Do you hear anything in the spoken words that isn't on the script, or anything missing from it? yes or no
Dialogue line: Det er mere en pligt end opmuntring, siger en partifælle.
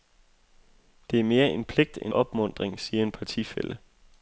no